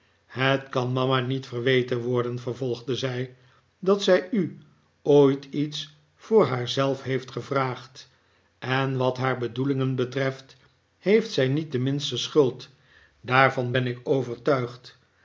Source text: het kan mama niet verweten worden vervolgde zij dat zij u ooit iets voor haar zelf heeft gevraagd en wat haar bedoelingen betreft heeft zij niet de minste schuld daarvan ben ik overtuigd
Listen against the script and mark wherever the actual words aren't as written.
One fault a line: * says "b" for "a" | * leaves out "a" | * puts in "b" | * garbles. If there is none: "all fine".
all fine